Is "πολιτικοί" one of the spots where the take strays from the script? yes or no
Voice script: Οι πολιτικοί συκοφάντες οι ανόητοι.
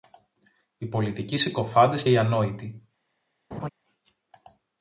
no